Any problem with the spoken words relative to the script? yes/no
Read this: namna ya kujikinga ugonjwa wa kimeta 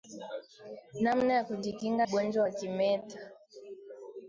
no